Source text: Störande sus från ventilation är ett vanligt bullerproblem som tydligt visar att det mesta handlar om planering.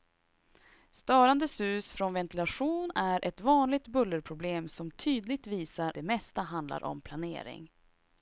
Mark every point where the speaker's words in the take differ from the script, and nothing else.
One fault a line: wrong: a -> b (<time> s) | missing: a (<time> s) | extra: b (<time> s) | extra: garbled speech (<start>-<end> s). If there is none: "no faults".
missing: att (5.9 s)